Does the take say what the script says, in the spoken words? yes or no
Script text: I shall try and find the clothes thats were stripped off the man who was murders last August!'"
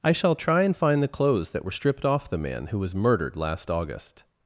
no